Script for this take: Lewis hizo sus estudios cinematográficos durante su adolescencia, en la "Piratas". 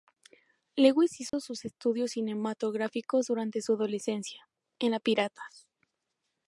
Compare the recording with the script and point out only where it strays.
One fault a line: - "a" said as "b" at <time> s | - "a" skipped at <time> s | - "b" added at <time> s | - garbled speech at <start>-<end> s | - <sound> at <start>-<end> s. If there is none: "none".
- dropout at 1.3-1.3 s